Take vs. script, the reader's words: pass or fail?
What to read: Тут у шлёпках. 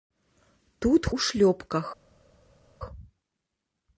pass